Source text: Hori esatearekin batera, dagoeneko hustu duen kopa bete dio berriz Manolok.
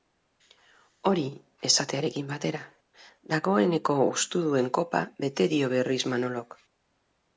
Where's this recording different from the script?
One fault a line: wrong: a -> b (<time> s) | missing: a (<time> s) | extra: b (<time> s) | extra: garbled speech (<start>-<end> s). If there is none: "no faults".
no faults